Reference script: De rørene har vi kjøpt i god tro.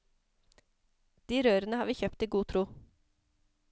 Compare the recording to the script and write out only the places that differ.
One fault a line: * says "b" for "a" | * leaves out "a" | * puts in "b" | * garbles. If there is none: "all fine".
all fine